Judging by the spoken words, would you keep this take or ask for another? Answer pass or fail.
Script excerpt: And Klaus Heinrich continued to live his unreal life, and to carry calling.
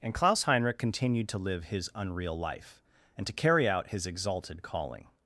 fail